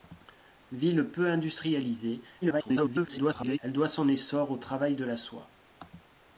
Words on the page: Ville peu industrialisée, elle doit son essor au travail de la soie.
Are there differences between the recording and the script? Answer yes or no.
yes